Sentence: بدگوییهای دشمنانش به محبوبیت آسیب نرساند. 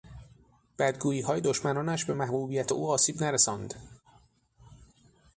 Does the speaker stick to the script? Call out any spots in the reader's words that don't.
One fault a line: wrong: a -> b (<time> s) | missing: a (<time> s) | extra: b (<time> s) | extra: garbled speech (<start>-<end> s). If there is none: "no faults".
extra: او (2.7 s)